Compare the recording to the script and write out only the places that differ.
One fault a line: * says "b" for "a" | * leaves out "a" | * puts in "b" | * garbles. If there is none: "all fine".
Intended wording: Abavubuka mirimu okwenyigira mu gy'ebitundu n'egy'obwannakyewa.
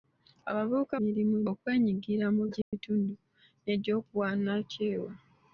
all fine